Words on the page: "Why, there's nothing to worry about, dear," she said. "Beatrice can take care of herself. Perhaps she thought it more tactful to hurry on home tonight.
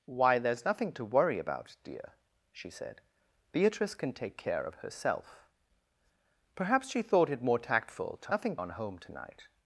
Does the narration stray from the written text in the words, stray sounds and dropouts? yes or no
yes